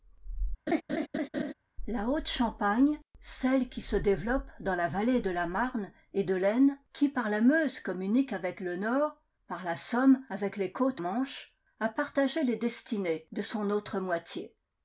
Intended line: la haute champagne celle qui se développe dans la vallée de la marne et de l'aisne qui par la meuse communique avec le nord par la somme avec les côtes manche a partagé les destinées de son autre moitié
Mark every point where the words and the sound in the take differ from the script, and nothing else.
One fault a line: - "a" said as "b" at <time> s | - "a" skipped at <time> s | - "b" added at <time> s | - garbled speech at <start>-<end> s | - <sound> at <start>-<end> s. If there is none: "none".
- laugh at 0.7-1.5 s